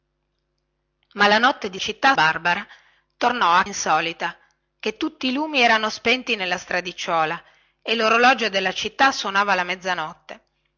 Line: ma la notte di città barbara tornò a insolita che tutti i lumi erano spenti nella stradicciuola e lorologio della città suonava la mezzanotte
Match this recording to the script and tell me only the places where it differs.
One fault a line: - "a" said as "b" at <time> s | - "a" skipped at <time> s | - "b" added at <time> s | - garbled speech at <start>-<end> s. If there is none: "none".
none